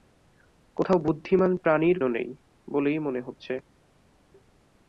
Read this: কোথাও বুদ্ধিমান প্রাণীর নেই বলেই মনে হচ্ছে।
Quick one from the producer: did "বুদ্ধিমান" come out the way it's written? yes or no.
yes